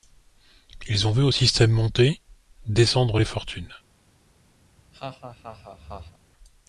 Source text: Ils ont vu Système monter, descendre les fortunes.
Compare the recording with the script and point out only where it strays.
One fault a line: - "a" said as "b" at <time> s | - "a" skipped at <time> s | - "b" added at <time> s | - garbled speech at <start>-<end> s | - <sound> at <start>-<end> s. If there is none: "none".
- "au" added at 1.2 s
- laugh at 4.6-6.2 s